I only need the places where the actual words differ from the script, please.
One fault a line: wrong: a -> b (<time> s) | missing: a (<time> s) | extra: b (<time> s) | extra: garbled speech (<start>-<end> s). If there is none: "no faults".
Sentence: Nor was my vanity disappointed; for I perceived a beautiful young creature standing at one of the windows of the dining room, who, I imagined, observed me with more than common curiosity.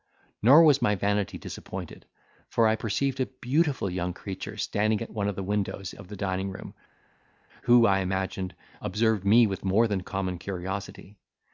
no faults